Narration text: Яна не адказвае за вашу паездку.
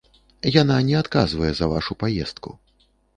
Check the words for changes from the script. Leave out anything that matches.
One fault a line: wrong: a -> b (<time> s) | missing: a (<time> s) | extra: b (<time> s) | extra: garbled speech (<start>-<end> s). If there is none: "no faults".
no faults